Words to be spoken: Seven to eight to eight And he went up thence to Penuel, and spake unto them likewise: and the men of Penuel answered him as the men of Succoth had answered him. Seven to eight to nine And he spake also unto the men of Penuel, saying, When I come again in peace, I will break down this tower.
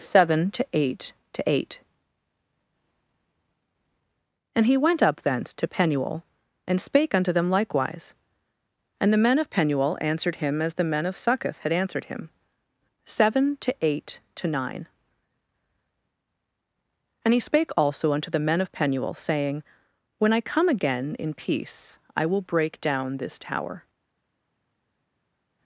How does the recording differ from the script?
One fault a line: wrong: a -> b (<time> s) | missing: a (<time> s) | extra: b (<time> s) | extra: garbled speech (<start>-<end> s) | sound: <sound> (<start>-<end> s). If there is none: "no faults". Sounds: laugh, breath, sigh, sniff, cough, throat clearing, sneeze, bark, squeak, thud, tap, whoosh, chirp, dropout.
no faults